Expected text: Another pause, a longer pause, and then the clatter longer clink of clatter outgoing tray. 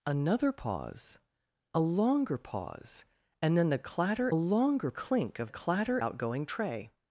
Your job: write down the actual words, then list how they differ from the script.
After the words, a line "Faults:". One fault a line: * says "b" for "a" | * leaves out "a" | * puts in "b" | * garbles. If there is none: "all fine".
Another pause, a longer pause, and then the clatter longer clink of clatter outgoing tray.
Faults:
all fine